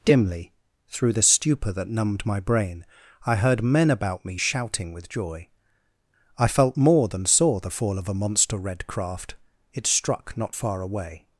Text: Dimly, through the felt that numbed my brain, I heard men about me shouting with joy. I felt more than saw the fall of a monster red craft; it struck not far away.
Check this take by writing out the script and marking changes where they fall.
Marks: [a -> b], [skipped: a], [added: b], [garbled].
Dimly, through the [felt -> stupor] that numbed my brain, I heard men about me shouting with joy. I felt more than saw the fall of a monster red craft; it struck not far away.